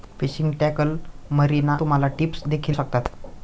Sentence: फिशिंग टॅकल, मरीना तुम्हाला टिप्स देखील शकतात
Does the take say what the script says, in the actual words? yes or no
yes